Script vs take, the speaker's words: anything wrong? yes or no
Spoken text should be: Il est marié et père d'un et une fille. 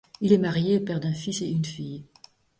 yes